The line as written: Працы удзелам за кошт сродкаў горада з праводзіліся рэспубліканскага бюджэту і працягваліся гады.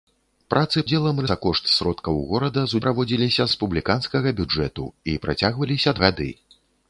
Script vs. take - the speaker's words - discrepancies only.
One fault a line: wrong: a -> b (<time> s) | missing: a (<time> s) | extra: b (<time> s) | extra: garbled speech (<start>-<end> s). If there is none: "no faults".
no faults